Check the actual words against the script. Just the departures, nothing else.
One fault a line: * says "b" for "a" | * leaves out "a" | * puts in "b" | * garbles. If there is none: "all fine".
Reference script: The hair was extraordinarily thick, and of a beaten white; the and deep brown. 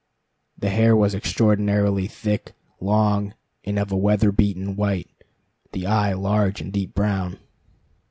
* puts in "long"
* puts in "weather"
* puts in "eye large"